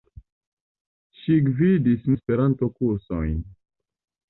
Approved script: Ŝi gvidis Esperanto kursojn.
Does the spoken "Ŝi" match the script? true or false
true